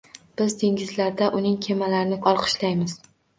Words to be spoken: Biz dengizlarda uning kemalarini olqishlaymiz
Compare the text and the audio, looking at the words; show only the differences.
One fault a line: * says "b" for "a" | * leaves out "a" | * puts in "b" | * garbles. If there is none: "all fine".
all fine